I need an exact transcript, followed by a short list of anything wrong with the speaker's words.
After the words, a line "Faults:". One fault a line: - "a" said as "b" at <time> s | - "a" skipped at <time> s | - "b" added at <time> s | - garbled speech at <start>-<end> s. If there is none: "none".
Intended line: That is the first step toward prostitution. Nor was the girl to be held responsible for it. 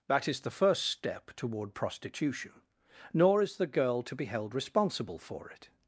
That is the first step toward prostitution. Nor is the girl to be held responsible for it.
Faults:
- "was" said as "is" at 3.4 s